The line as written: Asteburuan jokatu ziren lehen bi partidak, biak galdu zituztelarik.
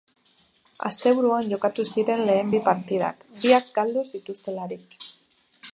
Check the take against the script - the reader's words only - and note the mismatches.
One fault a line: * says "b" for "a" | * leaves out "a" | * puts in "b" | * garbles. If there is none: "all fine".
all fine